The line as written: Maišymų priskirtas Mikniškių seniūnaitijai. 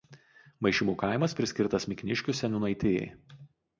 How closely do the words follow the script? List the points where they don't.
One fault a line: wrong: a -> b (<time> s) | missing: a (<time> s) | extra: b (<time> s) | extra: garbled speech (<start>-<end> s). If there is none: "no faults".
extra: kaimas (1.0 s)